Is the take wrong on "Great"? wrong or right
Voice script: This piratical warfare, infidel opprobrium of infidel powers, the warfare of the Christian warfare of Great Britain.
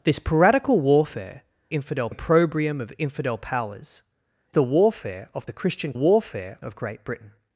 right